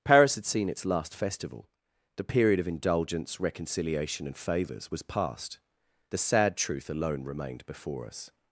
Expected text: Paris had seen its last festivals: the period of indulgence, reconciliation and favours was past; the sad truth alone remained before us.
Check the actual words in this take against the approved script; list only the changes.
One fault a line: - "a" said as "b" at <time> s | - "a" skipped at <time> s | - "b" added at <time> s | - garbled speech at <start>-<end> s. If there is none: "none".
- "festivals" said as "festival" at 1.1 s